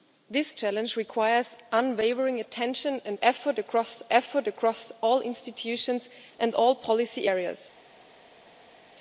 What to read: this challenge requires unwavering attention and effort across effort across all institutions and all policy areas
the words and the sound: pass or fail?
pass